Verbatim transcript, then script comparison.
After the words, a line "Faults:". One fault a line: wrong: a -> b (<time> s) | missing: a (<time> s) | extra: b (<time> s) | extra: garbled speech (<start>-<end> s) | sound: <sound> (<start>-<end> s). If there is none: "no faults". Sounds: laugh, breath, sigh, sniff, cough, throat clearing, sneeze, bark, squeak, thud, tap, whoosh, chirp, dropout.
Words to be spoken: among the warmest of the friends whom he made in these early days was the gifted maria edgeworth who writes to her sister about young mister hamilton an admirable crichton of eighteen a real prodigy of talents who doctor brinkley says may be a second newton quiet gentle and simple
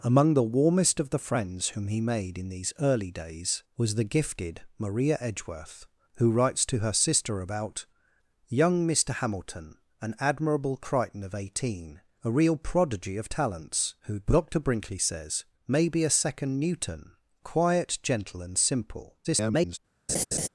among the warmest of the friends whom he made in these early days was the gifted maria edgeworth who writes to her sister about young mister hamilton an admirable crichton of eighteen a real prodigy of talents who doctor brinkley says may be a second newton quiet gentle and simple [garbled]
Faults:
extra: garbled speech (19.2-19.8 s)
sound: laugh (20.1-20.5 s)